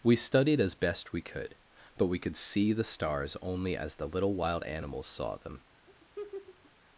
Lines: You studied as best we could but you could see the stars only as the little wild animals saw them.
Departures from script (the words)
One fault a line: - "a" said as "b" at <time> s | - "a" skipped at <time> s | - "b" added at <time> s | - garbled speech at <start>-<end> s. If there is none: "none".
- "You" said as "We" at 0.0 s
- "you" said as "we" at 2.1 s